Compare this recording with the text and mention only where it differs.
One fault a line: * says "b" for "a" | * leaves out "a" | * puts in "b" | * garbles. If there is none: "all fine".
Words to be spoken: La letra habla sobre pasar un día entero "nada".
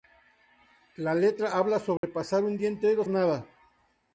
all fine